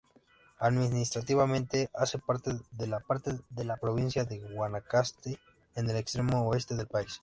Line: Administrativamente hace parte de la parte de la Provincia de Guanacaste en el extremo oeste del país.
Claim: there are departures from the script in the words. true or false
false